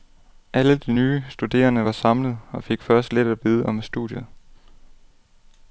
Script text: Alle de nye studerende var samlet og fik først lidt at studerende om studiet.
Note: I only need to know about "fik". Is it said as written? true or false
true